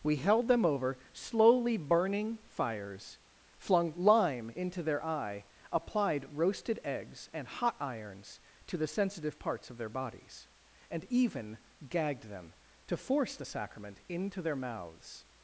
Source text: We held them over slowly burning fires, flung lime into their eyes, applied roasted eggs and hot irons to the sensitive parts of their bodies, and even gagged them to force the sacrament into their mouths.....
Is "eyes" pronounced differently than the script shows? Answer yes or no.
yes